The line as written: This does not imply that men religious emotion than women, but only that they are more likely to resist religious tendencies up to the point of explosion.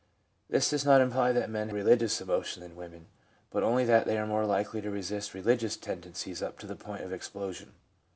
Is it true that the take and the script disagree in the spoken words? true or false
false